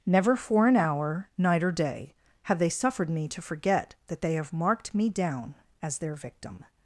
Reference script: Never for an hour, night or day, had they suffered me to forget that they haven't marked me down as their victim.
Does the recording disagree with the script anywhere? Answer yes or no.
yes